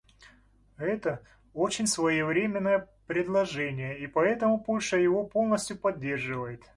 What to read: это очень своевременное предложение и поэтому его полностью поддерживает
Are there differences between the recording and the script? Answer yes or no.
yes